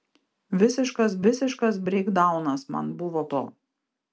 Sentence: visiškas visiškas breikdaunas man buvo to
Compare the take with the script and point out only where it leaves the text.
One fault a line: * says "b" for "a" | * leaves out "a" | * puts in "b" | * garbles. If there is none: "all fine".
all fine